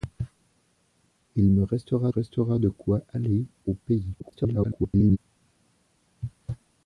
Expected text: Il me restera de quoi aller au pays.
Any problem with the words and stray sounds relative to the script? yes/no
yes